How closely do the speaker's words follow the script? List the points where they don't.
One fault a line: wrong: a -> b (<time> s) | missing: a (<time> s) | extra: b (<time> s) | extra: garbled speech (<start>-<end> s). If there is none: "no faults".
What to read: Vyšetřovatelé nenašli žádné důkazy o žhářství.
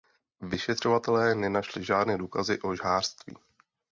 no faults